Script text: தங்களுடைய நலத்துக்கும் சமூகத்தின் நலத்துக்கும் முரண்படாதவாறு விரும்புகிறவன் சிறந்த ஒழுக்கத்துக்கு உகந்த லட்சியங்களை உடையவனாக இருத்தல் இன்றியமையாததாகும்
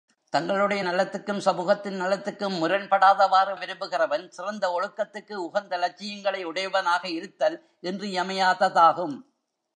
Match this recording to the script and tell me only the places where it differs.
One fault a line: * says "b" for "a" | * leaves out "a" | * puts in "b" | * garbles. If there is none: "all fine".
all fine